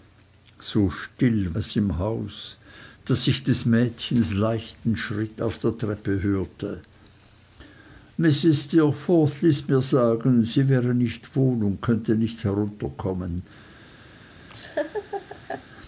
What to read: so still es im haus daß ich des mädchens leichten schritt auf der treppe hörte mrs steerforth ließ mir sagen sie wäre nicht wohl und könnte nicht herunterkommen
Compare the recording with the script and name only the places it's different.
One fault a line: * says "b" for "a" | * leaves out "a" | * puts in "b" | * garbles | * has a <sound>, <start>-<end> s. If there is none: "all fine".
* has a laugh, 14.5-15.6 s